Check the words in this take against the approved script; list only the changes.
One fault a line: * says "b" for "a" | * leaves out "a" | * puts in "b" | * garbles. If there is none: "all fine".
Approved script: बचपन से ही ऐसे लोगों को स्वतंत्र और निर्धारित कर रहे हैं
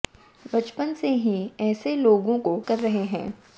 * leaves out "स्वतंत्र और निर्धारित"